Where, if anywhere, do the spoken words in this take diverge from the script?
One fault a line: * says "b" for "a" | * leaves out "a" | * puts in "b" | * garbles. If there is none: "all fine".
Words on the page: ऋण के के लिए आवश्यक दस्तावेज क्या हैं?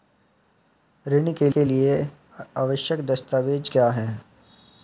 all fine